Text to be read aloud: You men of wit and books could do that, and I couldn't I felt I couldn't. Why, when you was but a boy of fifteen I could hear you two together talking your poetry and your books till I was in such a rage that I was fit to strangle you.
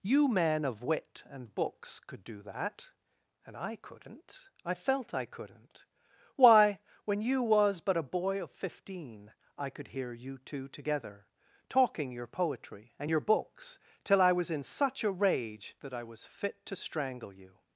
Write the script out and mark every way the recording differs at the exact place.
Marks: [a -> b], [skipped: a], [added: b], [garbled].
You men of wit and books could do that, and I couldn't I felt I couldn't. Why, when you was but a boy of fifteen I could hear you two together talking your poetry and your books till I was in such a rage that I was fit to strangle you.